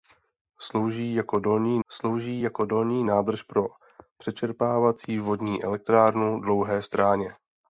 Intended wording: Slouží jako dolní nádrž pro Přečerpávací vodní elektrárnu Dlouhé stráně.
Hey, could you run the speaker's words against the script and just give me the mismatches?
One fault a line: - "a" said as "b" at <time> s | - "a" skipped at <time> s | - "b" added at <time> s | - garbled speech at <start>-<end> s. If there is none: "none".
- "slouží jako dolní" added at 1.9 s